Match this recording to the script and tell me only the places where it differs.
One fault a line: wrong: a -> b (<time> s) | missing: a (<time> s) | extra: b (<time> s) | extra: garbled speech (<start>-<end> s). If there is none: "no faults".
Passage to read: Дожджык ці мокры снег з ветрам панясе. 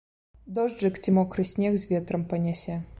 no faults